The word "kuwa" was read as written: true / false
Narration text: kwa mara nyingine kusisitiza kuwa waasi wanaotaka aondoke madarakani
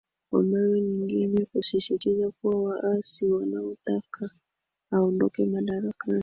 true